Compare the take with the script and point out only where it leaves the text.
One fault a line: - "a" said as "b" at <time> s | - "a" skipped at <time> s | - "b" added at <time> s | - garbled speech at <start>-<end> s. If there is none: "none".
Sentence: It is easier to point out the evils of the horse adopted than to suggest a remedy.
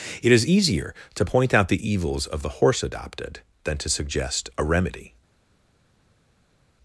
none